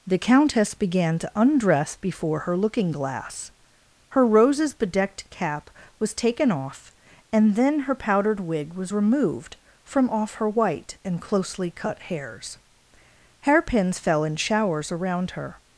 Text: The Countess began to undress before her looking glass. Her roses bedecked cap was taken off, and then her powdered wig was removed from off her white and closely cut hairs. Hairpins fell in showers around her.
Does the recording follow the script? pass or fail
pass